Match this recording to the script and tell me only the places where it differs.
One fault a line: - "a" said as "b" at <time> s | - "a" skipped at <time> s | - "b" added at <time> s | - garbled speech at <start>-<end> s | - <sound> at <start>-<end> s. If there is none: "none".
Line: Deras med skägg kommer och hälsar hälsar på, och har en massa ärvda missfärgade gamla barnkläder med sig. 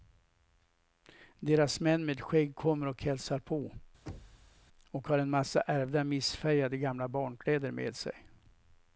- "män" added at 1.8 s
- "hälsar" skipped at 3.4 s
- thud at 4.1-4.6 s